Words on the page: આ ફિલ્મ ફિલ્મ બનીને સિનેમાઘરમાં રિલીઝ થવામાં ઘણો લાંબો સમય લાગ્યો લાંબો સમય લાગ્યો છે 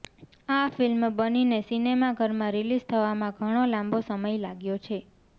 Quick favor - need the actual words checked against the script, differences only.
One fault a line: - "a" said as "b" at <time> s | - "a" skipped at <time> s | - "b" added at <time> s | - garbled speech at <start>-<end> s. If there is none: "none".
- "ફિલ્મ" skipped at 1.0 s
- "લાંબો સમય લાગ્યો" skipped at 4.8 s